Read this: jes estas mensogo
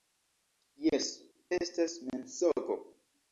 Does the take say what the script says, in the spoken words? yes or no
yes